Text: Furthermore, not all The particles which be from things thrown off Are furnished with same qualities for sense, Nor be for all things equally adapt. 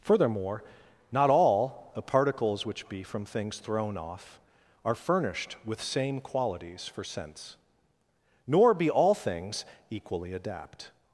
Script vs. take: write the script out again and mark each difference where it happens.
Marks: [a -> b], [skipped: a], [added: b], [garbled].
Furthermore, not all The particles which be from things thrown off Are furnished with same qualities for sense, Nor be [skipped: for] all things equally adapt.